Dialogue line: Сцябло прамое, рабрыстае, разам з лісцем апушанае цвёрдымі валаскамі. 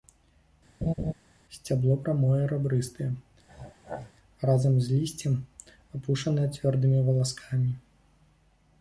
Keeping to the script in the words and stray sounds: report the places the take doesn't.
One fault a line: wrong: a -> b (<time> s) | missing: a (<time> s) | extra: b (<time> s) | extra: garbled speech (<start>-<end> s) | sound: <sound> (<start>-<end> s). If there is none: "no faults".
sound: laugh (0.8-1.1 s)
sound: throat clearing (3.5-4.1 s)